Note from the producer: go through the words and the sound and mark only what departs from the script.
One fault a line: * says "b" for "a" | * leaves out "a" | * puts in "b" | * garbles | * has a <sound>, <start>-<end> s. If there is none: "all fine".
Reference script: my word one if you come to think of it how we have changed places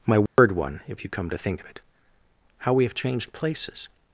* has a dropout, 0.3-0.4 s